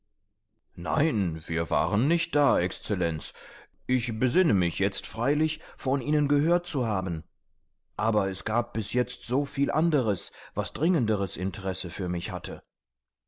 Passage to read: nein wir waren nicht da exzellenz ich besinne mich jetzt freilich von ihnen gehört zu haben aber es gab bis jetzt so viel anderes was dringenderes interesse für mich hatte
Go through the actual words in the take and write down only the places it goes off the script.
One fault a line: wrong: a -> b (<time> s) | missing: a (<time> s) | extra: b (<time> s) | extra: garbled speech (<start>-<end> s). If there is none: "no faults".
no faults